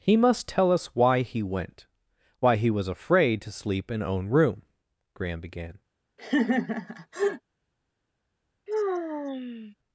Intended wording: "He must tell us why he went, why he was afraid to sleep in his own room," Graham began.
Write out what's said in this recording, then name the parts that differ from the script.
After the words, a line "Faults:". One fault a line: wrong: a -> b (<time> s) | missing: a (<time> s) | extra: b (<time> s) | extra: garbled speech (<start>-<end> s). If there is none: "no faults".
"He must tell us why he went, why he was afraid to sleep in own room," Graham began.
Faults:
missing: his (4.0 s)